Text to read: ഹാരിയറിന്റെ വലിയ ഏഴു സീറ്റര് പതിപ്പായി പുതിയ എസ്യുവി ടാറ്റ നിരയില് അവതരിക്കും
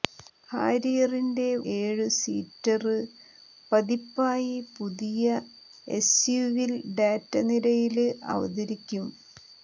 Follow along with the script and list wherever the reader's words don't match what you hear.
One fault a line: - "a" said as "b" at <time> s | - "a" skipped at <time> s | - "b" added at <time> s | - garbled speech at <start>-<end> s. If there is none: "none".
- "വലിയ" skipped at 1.4 s